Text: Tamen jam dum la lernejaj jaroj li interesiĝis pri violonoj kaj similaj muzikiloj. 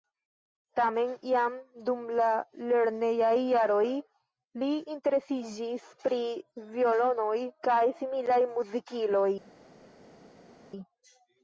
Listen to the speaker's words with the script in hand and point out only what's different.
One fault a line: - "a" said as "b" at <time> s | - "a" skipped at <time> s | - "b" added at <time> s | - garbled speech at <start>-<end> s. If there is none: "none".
none